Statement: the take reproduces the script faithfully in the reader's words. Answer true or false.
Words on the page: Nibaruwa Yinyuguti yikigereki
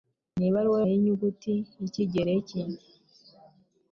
true